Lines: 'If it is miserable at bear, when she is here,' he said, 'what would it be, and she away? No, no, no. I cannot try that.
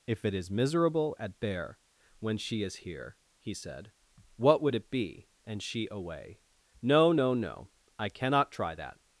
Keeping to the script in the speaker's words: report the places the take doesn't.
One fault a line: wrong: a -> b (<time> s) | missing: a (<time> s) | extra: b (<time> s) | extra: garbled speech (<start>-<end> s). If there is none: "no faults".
no faults